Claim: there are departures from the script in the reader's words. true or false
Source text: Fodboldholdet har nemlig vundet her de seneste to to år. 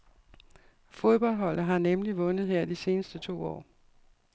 true